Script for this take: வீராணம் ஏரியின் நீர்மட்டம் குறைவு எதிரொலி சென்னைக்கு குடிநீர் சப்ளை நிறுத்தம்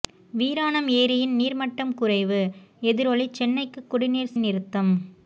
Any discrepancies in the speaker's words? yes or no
yes